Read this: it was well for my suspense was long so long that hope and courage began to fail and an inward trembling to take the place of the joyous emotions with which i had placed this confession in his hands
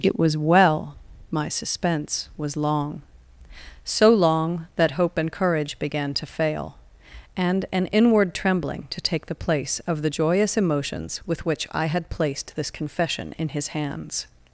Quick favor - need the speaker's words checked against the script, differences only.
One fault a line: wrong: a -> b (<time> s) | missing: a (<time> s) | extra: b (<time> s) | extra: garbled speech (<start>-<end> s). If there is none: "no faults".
missing: for (0.9 s)